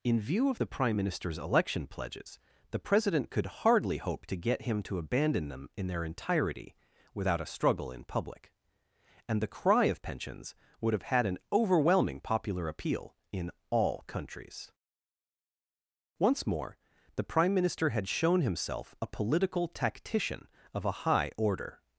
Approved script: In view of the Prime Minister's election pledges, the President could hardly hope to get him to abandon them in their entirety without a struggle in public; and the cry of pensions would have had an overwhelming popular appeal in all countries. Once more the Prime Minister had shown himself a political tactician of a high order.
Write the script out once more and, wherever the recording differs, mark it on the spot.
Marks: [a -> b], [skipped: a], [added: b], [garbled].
In view of the Prime Minister's election pledges, the President could hardly hope to get him to abandon them in their entirety without a struggle in public; and the cry of pensions would have had an overwhelming popular appeal in all countries. Once more the Prime Minister had shown himself a political tactician of a high order.